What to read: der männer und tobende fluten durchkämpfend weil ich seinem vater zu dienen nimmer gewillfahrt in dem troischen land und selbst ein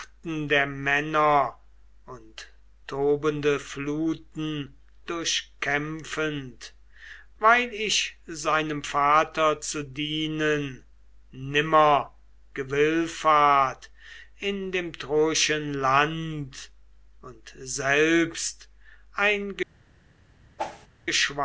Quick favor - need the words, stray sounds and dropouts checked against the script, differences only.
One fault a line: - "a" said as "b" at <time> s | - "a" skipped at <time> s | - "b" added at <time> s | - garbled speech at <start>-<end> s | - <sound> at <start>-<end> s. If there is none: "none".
- whoosh at 20.6-20.9 s